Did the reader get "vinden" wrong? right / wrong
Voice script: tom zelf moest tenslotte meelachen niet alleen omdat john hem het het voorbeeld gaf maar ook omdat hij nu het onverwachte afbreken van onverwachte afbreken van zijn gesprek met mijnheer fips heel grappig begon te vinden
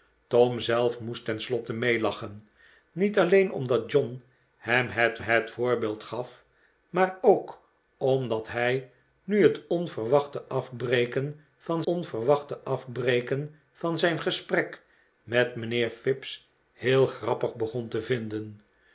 right